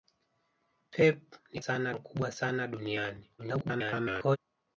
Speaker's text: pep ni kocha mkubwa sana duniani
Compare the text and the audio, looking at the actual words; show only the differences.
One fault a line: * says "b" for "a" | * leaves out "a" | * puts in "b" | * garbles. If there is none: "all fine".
* says "sana" for "kocha"
* garbles